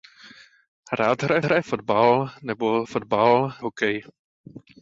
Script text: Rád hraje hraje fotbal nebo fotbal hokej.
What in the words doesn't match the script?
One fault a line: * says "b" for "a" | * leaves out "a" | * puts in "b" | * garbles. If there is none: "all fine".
all fine